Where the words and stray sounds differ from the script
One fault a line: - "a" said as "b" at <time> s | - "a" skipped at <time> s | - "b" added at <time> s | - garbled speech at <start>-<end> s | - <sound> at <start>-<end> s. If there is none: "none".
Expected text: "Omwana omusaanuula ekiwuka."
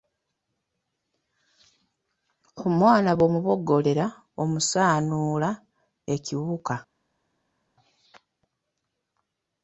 - "bw'omuboggolera" added at 3.2 s